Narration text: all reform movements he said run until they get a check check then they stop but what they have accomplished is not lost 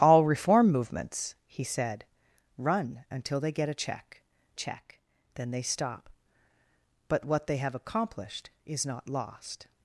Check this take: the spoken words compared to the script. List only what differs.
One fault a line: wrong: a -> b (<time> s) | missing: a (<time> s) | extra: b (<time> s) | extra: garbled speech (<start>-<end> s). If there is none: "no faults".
no faults